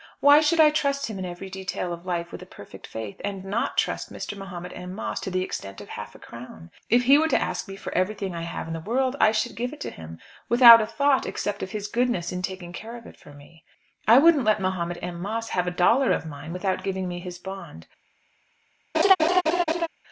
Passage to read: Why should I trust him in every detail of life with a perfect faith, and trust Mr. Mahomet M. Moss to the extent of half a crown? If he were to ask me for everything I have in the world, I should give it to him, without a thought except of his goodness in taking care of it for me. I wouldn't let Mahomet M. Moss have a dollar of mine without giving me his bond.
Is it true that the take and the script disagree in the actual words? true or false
true